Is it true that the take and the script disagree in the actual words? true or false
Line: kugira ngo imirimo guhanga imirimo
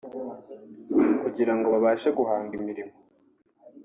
true